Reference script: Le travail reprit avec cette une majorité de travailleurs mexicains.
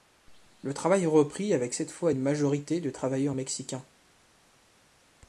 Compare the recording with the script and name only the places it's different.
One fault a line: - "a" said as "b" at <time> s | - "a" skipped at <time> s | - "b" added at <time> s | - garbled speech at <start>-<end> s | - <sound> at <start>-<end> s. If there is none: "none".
- "fois" added at 1.9 s